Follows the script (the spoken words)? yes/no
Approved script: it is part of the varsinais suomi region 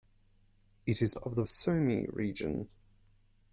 no